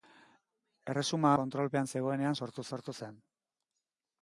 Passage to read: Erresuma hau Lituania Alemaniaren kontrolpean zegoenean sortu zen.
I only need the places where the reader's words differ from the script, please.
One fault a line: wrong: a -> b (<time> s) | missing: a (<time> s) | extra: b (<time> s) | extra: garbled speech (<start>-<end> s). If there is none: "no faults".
missing: hau Lituania Alemaniaren (1.3 s)
extra: sortu (2.7 s)